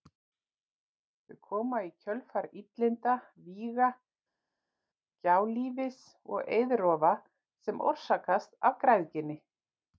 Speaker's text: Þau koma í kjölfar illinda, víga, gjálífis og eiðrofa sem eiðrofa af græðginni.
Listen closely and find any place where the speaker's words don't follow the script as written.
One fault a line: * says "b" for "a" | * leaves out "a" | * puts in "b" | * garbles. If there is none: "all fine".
* says "orsakast" for "eiðrofa"